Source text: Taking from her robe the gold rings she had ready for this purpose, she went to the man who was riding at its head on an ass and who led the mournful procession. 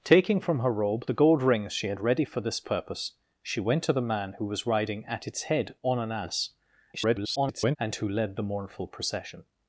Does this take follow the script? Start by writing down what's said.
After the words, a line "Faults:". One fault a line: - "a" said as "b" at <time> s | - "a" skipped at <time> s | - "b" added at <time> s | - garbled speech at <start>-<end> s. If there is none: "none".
Taking from her robe the gold rings she had ready for this purpose, she went to the man who was riding at its head on an ass [garbled] and who led the mournful procession.
Faults:
- garbled speech at 6.9-7.8 s